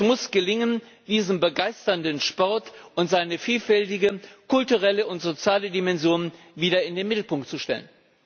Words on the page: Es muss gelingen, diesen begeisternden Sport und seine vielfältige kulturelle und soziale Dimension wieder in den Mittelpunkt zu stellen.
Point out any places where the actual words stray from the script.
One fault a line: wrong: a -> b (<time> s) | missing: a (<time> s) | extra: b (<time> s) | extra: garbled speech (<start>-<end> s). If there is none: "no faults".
no faults